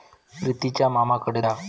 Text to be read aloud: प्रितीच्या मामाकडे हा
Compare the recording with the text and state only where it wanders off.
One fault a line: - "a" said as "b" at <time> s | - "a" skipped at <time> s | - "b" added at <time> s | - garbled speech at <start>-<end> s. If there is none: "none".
none